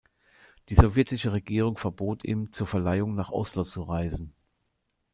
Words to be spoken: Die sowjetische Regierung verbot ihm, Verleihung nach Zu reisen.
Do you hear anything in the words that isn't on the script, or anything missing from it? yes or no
yes